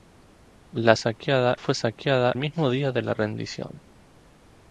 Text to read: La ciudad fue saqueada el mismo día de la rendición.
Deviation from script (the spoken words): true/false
true